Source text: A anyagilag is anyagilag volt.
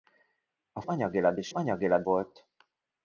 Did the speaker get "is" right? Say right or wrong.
right